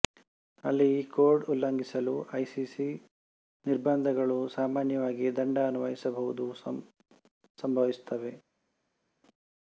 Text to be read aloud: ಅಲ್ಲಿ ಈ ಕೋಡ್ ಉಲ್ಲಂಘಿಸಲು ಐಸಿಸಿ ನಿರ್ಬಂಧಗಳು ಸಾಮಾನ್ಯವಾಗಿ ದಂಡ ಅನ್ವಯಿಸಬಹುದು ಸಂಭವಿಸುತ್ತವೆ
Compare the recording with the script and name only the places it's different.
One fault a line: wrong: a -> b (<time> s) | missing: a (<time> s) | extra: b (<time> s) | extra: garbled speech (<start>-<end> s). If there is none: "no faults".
no faults